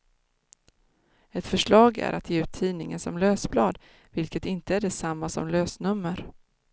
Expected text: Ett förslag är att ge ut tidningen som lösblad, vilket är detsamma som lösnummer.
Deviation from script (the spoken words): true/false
true